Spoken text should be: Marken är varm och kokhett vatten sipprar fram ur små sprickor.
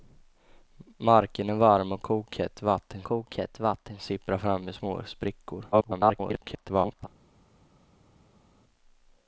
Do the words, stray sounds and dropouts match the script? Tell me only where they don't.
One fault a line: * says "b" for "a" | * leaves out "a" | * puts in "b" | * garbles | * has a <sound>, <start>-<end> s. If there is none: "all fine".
* puts in "kokhett vatten"
* garbles